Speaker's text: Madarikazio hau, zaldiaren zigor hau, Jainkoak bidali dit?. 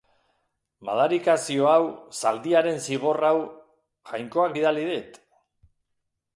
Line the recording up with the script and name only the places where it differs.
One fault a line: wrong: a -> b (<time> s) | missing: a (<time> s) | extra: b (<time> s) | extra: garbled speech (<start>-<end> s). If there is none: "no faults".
no faults